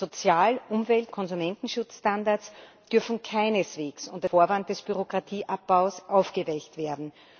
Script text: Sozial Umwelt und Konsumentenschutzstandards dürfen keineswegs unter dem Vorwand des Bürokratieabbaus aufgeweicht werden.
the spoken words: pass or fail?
fail